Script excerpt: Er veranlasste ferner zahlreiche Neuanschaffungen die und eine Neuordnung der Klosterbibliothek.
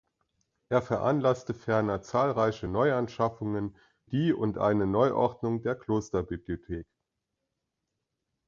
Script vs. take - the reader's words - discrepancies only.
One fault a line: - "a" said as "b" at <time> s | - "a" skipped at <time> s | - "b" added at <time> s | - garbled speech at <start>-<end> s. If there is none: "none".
none